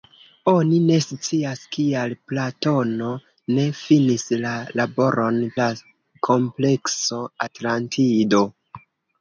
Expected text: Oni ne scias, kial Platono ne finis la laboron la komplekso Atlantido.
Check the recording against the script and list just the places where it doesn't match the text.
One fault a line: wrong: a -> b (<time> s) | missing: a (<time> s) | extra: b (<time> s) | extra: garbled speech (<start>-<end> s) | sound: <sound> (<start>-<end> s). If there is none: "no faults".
no faults